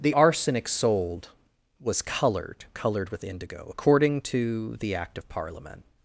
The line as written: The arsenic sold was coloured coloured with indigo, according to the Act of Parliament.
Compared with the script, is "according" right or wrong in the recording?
right